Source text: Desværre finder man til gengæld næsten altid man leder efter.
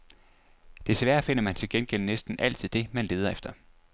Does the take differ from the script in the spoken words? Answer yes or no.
yes